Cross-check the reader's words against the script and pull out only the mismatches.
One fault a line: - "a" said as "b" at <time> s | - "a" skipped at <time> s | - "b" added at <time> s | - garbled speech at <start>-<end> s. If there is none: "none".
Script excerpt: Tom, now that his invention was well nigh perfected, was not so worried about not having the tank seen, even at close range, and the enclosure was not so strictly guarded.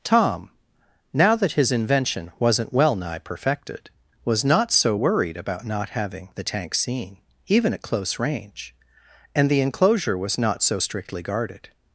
- "was" said as "wasn't" at 2.4 s